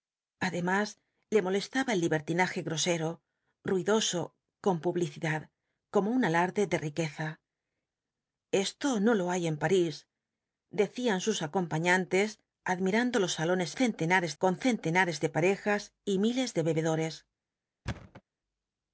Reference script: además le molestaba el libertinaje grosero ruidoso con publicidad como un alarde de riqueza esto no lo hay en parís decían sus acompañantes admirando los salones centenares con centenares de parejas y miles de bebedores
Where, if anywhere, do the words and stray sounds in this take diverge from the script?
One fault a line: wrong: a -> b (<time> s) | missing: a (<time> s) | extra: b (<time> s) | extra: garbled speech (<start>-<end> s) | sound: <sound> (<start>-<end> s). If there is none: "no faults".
sound: thud (17.9-18.2 s)